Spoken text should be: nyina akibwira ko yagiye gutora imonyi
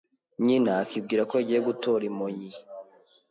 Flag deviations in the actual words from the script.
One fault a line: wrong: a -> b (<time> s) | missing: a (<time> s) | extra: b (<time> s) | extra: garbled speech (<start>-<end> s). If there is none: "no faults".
no faults